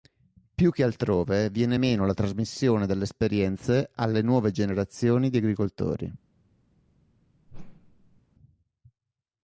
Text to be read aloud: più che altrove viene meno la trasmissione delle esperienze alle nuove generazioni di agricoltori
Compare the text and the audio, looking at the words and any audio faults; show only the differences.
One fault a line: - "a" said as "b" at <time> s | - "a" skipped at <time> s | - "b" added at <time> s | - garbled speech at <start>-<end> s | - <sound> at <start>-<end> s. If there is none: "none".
- whoosh at 7.5-8.2 s